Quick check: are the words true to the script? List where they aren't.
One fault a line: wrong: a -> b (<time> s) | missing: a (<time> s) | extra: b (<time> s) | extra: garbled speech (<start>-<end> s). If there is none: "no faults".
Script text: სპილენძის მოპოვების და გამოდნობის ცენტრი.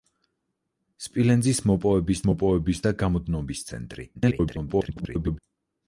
extra: მოპოვების (2.3 s)
extra: garbled speech (4.1-5.4 s)